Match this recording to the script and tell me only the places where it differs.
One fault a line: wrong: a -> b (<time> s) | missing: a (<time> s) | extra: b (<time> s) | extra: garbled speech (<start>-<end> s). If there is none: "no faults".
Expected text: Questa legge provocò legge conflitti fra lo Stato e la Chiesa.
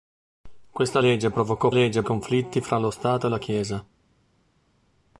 no faults